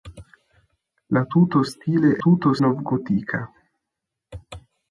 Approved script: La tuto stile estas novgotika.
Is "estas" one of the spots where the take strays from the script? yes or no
yes